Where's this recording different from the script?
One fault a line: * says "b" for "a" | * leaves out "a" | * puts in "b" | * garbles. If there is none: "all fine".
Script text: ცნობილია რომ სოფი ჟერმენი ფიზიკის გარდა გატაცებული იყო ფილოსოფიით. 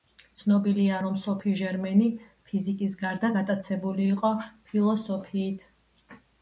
all fine